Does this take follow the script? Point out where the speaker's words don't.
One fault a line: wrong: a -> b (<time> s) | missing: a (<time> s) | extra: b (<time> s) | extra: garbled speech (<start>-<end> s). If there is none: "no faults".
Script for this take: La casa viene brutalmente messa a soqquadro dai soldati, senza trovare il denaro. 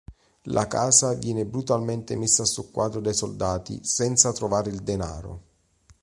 no faults